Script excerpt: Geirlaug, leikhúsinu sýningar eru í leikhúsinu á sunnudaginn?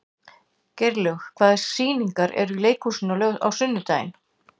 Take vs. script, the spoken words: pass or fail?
fail